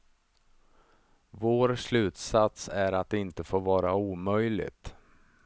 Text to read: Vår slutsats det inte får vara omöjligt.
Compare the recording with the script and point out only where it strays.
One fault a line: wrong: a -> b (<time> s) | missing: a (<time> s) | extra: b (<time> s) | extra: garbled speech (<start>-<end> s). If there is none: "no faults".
extra: är att (2.7 s)